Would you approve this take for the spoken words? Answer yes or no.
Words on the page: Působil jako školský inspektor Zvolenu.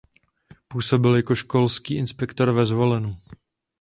no